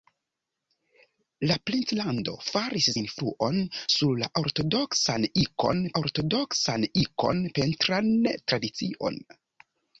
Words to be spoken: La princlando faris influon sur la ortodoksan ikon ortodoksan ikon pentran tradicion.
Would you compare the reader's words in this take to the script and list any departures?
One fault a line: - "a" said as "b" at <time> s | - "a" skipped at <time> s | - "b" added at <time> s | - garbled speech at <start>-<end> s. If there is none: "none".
none